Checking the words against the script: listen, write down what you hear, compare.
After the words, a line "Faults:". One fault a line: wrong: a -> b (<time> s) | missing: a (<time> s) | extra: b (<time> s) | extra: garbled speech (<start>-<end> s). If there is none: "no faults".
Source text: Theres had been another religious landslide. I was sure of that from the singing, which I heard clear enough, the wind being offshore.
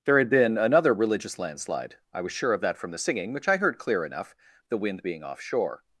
There had been another religious landslide. I was sure of that from the singing, which I heard clear enough, the wind being offshore.
Faults:
wrong: Theres -> There (0.1 s)